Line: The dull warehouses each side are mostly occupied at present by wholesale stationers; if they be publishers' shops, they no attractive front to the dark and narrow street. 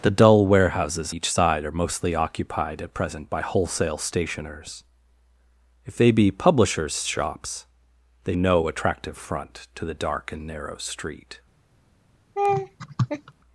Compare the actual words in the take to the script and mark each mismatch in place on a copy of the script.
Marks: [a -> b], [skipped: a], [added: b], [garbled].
The dull warehouses each side are mostly occupied at present by wholesale stationers; if they be publishers' shops, they no attractive front to the dark and narrow street.